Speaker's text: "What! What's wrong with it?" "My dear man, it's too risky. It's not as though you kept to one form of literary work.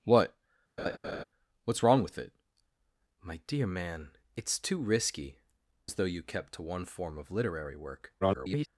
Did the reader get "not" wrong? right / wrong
wrong